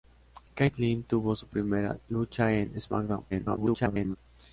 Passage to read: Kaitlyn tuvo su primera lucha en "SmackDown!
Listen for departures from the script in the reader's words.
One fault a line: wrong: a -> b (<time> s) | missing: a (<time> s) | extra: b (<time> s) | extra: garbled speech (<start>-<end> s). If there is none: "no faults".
extra: garbled speech (3.3-4.2 s)